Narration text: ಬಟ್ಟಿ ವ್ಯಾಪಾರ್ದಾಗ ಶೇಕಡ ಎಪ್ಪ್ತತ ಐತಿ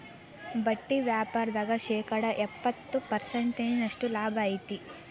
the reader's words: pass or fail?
fail